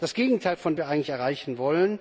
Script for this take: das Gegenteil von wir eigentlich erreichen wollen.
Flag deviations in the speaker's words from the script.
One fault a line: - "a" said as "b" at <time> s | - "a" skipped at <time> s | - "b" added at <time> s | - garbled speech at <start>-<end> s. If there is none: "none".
none